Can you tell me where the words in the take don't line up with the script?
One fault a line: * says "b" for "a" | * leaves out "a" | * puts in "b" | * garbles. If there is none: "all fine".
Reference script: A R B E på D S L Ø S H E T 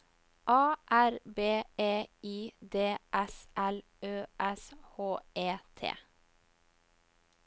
* says "I" for "på"